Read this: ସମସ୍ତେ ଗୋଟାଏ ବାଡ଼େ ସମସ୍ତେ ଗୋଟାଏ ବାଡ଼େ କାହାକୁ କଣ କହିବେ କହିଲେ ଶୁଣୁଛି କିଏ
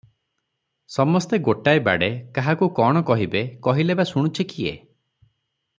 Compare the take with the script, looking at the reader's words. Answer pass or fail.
fail